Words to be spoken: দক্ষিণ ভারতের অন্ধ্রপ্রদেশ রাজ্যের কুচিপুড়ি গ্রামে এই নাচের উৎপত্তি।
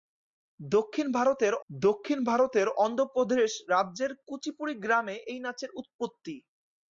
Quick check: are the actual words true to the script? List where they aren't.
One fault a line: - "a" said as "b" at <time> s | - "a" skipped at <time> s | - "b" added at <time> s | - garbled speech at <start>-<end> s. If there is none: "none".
- "দক্ষিণ ভারতের" added at 1.7 s